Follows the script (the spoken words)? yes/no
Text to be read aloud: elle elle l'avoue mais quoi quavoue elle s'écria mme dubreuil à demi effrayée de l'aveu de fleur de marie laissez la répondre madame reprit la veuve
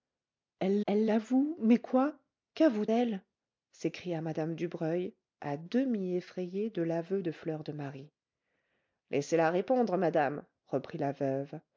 yes